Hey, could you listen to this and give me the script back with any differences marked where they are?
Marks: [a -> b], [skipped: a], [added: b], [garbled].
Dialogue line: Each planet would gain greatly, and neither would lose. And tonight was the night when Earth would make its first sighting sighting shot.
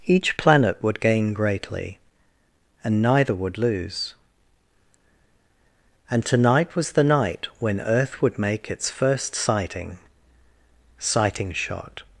Each planet would gain greatly, and neither would lose. And tonight was the night when Earth would make its first sighting sighting shot.